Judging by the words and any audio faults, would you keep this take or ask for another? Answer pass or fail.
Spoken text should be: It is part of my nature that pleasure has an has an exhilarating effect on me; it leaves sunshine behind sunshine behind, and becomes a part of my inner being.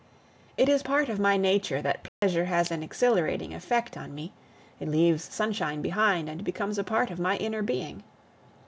fail